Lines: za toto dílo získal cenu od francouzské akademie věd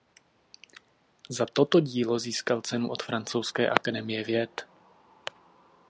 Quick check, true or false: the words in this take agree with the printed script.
true